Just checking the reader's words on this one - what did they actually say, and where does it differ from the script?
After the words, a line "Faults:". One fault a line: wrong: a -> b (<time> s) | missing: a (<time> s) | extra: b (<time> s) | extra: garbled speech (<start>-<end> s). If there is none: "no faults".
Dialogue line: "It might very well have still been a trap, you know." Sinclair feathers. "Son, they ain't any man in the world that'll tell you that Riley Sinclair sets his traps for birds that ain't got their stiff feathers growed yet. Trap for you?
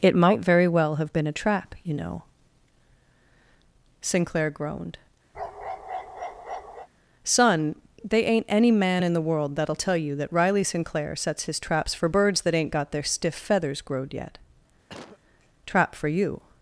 "It might very well have been a trap, you know." Sinclair groaned. "Son, they ain't any man in the world that'll tell you that Riley Sinclair sets his traps for birds that ain't got their stiff feathers growed yet. Trap for you?
Faults:
missing: still (1.1 s)
wrong: feathers -> groaned (4.5 s)